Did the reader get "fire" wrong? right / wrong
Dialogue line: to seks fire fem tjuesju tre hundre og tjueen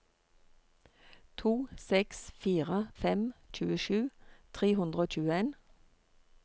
right